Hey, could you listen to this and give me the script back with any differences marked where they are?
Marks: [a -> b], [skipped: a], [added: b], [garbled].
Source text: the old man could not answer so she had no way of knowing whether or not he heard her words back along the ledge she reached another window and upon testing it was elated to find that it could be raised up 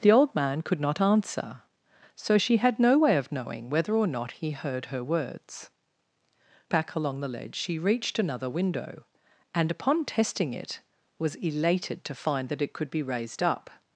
the old man could not answer so she had no way of knowing whether or not he heard her words back along the ledge she reached another window and upon testing it was elated to find that it could be raised up